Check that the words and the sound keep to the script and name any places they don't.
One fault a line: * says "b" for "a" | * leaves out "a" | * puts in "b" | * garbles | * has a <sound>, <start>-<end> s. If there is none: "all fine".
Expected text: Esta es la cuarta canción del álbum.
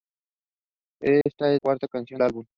* has a dropout, 1.2-1.3 s
* leaves out "la"
* leaves out "del"